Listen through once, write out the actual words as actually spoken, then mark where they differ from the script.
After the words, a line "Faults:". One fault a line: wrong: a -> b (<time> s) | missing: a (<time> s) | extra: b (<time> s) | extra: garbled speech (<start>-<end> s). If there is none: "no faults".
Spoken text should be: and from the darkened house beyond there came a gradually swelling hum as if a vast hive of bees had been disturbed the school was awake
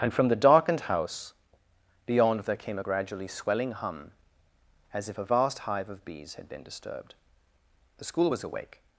and from the darkened house beyond there came a gradually swelling hum as if a vast hive of bees had been disturbed the school was awake
Faults:
no faults